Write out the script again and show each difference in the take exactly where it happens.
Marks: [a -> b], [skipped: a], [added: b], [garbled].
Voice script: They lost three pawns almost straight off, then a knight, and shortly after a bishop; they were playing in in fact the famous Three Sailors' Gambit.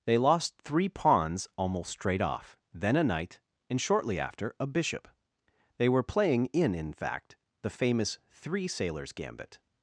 They lost three pawns almost straight off, then a knight, and shortly after a bishop; they were playing in in fact the famous Three Sailors' Gambit.